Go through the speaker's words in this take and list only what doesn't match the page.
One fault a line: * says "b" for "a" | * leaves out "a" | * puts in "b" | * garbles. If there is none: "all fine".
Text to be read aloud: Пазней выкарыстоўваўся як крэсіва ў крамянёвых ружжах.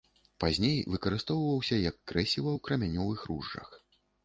all fine